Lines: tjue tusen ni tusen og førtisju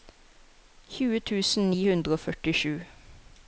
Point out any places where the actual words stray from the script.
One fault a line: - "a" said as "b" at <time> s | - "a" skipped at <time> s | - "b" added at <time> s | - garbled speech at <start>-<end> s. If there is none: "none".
- "tusen" said as "hundre" at 1.9 s